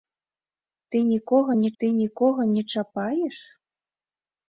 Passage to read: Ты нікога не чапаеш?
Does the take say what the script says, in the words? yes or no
no